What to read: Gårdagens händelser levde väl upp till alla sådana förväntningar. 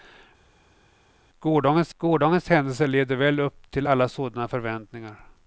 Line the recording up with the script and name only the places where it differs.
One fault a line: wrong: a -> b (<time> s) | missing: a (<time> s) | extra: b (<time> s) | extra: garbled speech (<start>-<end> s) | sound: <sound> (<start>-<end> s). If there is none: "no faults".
extra: gårdagens (2.0 s)